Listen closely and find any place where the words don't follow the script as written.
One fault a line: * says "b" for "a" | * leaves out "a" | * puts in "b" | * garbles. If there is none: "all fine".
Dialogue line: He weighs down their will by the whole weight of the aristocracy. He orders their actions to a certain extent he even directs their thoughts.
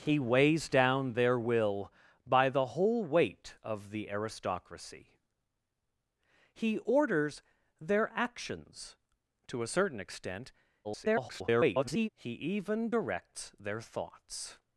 * garbles